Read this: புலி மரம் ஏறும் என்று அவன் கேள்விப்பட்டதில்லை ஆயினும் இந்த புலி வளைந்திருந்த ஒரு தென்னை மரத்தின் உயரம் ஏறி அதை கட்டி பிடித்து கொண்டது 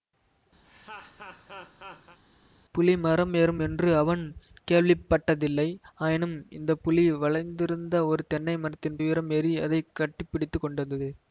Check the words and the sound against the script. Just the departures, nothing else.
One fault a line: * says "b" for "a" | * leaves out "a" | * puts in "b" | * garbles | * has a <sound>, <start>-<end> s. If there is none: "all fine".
* has a laugh, 0.6-2.2 s